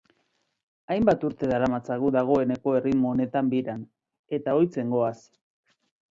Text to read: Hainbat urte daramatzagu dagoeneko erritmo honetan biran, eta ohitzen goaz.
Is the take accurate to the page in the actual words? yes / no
yes